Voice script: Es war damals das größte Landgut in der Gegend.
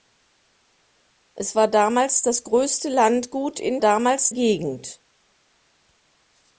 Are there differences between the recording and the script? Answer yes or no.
yes